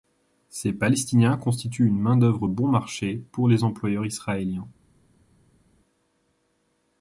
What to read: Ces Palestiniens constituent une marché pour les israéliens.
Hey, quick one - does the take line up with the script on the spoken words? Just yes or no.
no